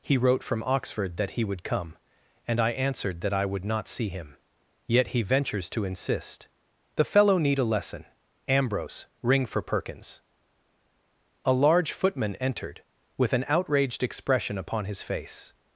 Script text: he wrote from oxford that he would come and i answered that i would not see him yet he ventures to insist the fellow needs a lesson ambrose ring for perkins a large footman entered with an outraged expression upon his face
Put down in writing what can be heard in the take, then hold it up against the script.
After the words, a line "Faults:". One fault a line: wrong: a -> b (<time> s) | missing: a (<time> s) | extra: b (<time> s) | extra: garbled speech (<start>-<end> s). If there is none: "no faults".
he wrote from oxford that he would come and i answered that i would not see him yet he ventures to insist the fellow need a lesson ambrose ring for perkins a large footman entered with an outraged expression upon his face
Faults:
wrong: needs -> need (7.4 s)